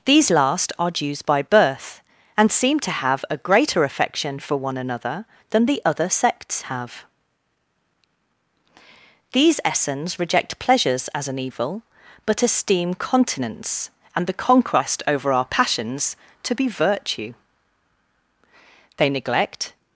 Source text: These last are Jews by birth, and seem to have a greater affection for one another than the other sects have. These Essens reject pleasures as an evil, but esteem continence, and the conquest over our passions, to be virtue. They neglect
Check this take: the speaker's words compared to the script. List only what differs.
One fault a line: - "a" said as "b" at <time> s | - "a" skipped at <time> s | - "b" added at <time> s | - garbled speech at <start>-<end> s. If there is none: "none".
none